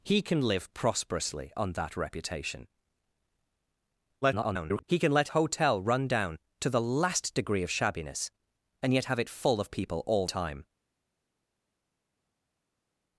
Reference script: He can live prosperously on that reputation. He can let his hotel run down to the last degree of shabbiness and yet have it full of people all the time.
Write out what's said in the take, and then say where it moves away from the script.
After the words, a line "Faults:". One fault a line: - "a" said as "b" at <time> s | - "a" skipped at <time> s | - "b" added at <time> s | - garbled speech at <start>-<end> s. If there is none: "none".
He can live prosperously on that reputation. [garbled] He can let hotel run down to the last degree of shabbiness and yet have it full of people all time.
Faults:
- garbled speech at 4.2-4.8 s
- "his" skipped at 5.3 s
- "the" skipped at 10.3 s